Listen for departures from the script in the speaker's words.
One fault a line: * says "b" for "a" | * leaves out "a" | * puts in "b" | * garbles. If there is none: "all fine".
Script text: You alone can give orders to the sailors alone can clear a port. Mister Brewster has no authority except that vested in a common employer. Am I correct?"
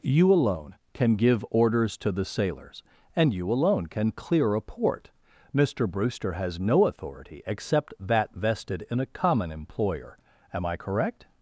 * puts in "and you"